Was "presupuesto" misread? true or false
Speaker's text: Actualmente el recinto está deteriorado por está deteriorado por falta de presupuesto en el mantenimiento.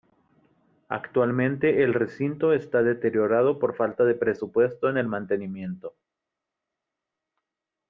false